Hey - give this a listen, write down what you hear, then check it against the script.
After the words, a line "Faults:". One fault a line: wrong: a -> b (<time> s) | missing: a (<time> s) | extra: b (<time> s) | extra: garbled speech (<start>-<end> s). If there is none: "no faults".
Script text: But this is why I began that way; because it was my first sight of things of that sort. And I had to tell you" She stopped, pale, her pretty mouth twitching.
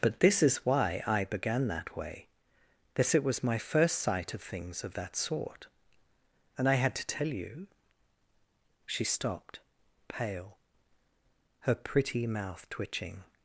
But this is why I began that way; that it was my first sight of things of that sort. And I had to tell you" She stopped, pale, her pretty mouth twitching.
Faults:
wrong: because -> that (3.0 s)